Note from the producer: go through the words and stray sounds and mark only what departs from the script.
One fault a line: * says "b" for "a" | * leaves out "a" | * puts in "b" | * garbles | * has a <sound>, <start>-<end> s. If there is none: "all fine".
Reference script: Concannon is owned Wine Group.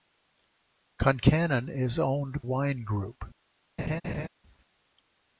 * has a laugh, 3.8-4.3 s